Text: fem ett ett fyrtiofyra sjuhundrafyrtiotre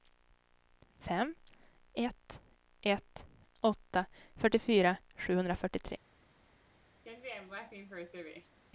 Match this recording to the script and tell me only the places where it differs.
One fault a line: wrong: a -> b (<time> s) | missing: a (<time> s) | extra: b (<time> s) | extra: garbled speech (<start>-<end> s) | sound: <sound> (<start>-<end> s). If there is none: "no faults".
extra: åtta (3.6 s)
sound: laugh (7.0-8.6 s)